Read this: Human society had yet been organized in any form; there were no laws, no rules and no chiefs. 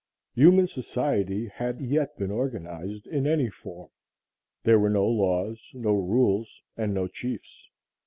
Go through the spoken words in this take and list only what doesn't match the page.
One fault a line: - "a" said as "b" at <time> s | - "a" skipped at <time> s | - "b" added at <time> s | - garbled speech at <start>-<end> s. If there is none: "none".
none